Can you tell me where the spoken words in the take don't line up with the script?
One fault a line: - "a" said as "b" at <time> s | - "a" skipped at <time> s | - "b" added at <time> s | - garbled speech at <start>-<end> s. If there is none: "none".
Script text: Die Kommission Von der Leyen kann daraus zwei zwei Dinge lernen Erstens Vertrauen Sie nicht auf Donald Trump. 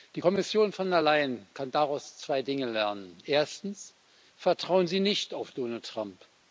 - "zwei" skipped at 2.4 s